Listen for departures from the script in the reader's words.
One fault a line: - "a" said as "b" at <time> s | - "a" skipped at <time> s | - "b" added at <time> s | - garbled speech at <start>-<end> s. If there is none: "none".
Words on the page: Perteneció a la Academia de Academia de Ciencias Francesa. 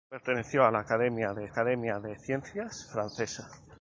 none